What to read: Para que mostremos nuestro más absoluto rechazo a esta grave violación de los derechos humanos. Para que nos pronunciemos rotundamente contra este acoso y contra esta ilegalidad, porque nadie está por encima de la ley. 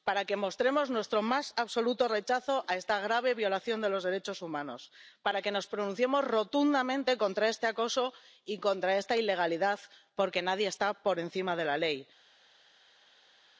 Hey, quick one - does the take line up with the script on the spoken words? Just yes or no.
yes